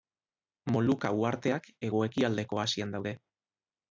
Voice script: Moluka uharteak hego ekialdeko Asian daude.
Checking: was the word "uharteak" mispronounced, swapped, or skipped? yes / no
no